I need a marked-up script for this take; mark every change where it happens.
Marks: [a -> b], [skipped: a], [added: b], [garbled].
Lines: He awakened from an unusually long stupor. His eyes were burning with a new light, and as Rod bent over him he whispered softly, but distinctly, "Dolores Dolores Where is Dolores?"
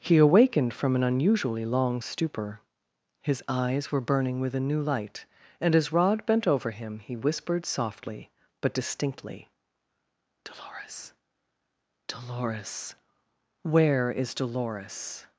He awakened from an unusually long stupor. His eyes were burning with a new light, and as Rod bent over him he whispered softly, but distinctly, "Dolores Dolores Where is Dolores?"